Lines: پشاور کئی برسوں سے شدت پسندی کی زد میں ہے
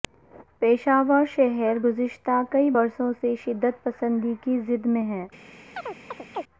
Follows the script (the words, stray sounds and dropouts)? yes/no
no